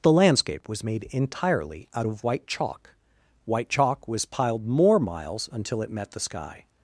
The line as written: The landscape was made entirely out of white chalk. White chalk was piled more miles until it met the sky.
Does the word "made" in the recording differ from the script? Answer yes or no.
no